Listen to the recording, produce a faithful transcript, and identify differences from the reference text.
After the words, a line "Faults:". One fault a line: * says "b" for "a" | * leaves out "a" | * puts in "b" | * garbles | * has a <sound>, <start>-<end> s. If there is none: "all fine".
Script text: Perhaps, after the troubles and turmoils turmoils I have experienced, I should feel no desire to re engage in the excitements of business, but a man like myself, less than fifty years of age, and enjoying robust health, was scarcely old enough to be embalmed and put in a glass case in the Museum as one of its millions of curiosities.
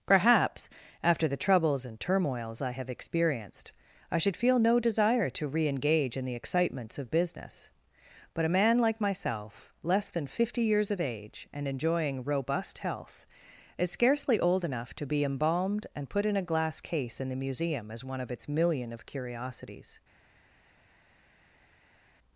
Perhaps, after the troubles and turmoils I have experienced, I should feel no desire to re engage in the excitements of business, but a man like myself, less than fifty years of age, and enjoying robust health, is scarcely old enough to be embalmed and put in a glass case in the Museum as one of its million of curiosities.
Faults:
* leaves out "turmoils"
* says "is" for "was"
* says "million" for "millions"